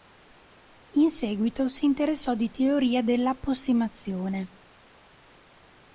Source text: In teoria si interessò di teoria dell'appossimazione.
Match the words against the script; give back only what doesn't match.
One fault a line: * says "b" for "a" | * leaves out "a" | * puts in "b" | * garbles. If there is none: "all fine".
* says "seguito" for "teoria"